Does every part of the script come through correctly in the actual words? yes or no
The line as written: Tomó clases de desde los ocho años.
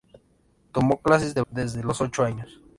yes